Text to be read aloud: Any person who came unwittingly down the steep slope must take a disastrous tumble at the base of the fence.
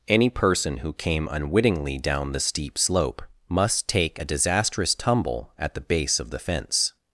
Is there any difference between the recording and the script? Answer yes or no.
no